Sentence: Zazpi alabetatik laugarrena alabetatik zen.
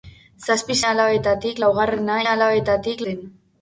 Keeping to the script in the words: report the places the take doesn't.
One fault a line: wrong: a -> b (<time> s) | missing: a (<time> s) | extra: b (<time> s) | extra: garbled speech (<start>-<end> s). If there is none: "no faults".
no faults